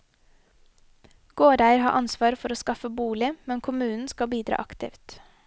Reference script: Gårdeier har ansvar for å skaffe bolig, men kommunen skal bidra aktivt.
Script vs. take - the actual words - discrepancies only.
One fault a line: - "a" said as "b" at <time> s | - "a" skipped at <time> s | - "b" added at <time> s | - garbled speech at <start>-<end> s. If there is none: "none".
none